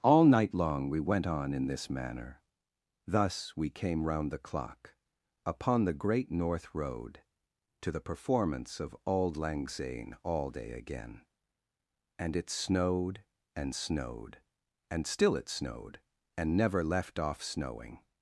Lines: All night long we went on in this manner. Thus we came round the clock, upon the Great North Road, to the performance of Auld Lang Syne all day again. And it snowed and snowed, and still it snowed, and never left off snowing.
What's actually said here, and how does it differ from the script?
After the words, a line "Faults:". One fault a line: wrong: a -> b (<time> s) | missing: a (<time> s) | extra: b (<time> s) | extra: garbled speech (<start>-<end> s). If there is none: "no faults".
All night long we went on in this manner. Thus we came round the clock, upon the Great North Road, to the performance of Auld Lang Syne all day again. And it snowed and snowed, and still it snowed, and never left off snowing.
Faults:
no faults